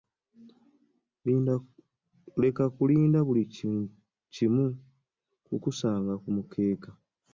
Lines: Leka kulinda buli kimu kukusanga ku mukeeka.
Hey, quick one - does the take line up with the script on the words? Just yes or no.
yes